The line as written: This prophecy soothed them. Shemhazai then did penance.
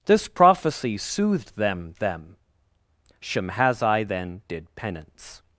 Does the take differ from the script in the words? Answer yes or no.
yes